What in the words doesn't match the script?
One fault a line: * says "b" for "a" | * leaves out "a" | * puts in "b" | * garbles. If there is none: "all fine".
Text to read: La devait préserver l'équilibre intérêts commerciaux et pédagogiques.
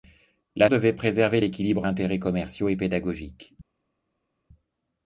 all fine